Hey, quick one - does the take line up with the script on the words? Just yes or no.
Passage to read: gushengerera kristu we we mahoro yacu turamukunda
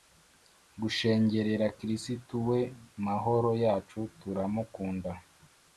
no